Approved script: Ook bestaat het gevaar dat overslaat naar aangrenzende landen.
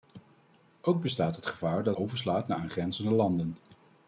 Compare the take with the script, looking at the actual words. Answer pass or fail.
pass